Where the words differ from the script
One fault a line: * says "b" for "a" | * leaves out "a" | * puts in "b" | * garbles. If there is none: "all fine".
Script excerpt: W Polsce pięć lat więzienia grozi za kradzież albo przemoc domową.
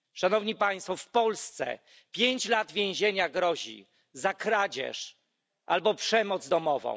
all fine